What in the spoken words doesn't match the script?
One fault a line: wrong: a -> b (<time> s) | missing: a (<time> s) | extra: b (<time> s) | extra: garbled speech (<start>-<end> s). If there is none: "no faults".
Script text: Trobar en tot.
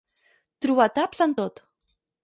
extra: taps (1.0 s)